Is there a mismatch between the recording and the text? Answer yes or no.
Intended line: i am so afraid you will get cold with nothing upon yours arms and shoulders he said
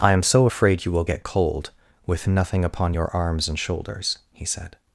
yes